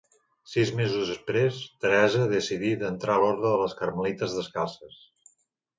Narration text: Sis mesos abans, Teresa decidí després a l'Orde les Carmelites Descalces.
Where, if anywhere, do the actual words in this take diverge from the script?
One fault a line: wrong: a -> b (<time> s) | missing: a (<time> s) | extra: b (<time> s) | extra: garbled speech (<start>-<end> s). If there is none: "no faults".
wrong: abans -> després (1.1 s)
wrong: després -> d'entrar (2.8 s)
extra: de (3.5 s)